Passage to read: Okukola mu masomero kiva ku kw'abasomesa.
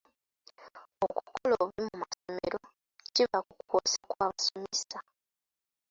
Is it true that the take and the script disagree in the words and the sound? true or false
true